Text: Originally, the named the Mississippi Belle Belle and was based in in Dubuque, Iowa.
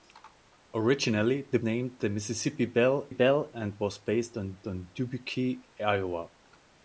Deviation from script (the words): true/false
false